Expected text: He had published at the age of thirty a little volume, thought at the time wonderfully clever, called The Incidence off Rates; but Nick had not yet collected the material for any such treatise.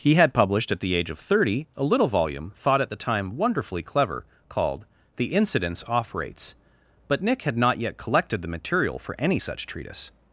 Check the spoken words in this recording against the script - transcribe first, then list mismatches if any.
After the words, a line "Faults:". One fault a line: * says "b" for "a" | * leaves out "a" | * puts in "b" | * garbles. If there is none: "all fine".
He had published at the age of thirty a little volume, thought at the time wonderfully clever, called The Incidence off Rates; but Nick had not yet collected the material for any such treatise.
Faults:
all fine